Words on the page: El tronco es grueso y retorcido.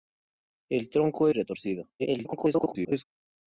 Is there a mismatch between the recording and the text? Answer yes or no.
yes